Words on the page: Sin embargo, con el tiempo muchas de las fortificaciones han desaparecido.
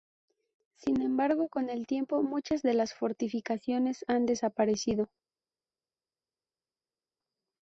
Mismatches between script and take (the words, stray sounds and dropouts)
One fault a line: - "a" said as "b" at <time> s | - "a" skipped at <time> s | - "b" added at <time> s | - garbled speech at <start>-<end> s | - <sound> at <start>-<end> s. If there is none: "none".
none